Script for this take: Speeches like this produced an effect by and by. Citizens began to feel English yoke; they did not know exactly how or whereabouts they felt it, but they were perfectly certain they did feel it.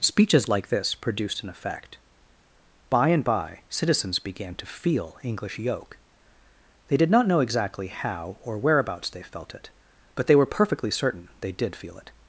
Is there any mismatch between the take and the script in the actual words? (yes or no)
no